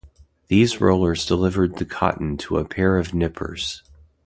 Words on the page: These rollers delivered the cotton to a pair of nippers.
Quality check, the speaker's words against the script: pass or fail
pass